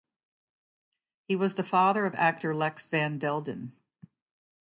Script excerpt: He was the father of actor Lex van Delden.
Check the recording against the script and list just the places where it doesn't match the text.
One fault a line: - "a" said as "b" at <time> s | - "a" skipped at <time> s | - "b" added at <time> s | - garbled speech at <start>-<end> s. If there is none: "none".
none